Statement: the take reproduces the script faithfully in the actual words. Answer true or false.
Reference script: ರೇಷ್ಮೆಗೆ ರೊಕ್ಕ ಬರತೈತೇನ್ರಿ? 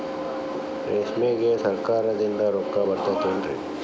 false